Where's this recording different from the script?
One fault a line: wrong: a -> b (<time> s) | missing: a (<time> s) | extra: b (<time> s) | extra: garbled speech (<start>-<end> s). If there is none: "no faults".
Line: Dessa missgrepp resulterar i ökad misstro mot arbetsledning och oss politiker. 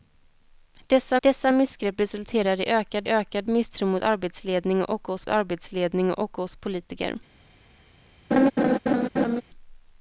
extra: dessa (1.2 s)
extra: ökad (3.1 s)
extra: arbetsledning och oss (5.3 s)